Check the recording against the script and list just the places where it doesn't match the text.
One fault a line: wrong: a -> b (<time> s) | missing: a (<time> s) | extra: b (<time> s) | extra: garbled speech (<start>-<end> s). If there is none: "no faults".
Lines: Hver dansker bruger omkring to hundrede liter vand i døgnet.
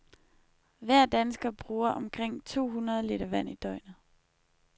no faults